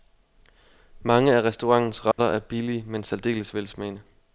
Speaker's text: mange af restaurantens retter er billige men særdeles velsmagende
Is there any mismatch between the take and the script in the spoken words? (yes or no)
no